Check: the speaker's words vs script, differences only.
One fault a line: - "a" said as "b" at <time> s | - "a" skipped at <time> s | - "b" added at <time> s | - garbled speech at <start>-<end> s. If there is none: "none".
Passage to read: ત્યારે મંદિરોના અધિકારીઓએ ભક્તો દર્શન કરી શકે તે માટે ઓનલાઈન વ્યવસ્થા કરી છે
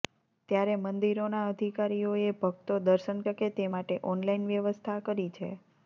- "કરી" skipped at 3.2 s